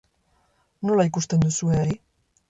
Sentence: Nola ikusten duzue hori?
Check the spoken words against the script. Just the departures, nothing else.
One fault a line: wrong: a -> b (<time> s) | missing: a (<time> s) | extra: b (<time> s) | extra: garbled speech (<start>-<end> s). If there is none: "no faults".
no faults